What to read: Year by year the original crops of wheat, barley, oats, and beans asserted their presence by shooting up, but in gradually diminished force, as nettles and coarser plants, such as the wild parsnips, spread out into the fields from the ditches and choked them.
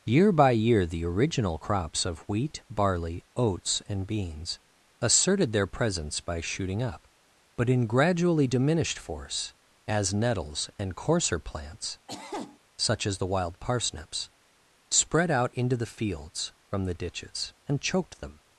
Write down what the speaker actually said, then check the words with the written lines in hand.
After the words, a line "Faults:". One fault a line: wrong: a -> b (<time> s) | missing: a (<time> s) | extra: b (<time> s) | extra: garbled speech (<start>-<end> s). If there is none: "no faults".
Year by year the original crops of wheat, barley, oats, and beans asserted their presence by shooting up, but in gradually diminished force, as nettles and coarser plants, such as the wild parsnips, spread out into the fields from the ditches and choked them.
Faults:
no faults